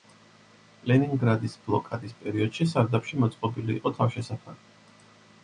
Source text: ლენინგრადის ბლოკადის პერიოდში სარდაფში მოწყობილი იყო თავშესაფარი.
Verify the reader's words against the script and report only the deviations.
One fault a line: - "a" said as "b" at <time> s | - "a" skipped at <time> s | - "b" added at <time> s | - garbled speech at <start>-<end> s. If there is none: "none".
none